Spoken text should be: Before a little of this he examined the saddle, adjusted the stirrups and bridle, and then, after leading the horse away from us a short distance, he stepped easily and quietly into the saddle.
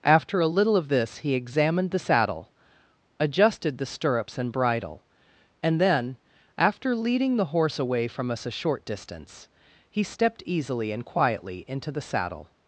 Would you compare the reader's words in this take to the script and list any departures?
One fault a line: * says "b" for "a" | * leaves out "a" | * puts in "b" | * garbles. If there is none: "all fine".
* says "After" for "Before"